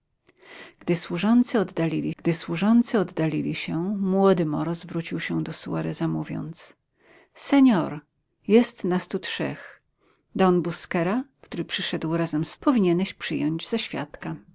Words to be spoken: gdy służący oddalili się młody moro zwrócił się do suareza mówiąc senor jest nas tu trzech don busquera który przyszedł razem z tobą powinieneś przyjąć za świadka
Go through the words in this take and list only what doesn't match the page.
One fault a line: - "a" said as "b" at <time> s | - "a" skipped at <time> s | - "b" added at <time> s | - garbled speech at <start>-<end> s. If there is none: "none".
- "gdy służący oddalili" added at 2.2 s
- "tobą" skipped at 12.6 s